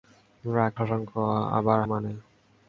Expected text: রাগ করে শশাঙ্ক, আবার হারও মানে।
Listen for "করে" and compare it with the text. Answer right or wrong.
wrong